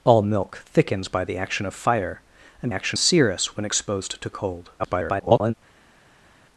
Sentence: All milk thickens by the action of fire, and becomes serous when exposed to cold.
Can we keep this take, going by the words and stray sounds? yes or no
no